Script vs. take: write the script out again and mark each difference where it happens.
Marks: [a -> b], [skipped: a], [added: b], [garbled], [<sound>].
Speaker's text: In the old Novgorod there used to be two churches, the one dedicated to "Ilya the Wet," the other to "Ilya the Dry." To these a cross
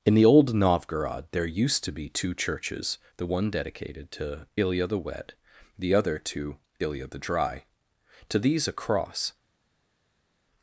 In the old Novgorod there used to be two churches, the one dedicated to "Ilya the Wet," the other to "Ilya the Dry." To these a cross